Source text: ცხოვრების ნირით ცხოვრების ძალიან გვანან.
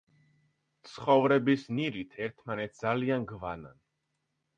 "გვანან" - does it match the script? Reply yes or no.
yes